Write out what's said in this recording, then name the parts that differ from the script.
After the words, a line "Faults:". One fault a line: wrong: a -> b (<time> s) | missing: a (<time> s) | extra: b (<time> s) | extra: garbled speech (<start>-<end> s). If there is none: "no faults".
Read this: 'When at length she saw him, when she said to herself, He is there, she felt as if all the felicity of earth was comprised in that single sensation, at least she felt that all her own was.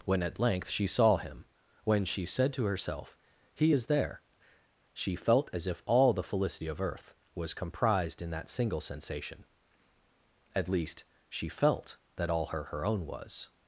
'When at length she saw him, when she said to herself, He is there, she felt as if all the felicity of earth was comprised in that single sensation, at least she felt that all her her own was.
Faults:
extra: her (12.6 s)